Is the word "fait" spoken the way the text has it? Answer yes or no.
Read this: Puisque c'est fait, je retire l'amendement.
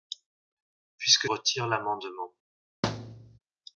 no